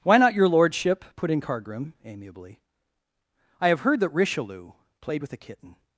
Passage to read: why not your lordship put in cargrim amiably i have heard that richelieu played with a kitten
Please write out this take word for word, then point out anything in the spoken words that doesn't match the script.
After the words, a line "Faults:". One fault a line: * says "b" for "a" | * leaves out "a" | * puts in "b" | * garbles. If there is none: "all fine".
why not your lordship put in cargrim amiably i have heard that richelieu played with a kitten
Faults:
all fine